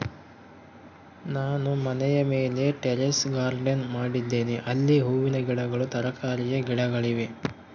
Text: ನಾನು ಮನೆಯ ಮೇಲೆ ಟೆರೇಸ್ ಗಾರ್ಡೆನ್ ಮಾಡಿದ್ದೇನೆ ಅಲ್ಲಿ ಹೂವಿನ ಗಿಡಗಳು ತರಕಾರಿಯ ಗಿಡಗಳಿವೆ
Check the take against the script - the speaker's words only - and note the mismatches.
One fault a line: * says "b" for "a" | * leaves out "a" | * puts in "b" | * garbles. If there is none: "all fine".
all fine